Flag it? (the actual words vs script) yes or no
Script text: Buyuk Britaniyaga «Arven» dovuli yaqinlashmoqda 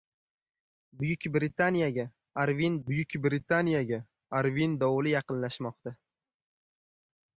yes